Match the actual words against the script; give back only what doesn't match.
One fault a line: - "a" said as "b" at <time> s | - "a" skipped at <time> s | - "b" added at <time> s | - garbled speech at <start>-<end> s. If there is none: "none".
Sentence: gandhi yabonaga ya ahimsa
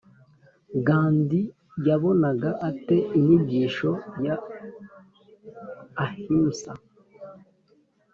- "ate inyigisho" added at 2.7 s